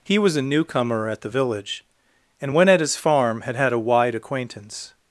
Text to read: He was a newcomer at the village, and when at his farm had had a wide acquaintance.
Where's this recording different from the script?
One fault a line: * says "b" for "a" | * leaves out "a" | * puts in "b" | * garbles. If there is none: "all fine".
all fine